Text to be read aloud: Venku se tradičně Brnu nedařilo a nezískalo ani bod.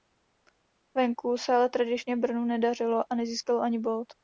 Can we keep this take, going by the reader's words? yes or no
no